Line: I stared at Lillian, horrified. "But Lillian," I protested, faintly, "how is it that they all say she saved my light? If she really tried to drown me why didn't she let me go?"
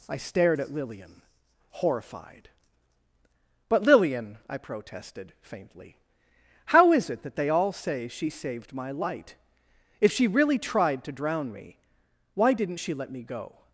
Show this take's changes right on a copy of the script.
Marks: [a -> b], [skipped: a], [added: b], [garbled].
I stared at Lillian, horrified. "But Lillian," I protested, faintly, "how is it that they all say she saved my light? If she really tried to drown me why didn't she let me go?"